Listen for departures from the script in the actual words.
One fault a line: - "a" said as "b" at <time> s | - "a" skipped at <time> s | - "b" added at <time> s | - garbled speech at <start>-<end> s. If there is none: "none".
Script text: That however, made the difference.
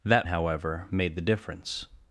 none